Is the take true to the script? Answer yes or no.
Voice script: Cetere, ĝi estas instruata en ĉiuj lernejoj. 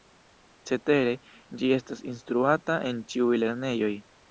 yes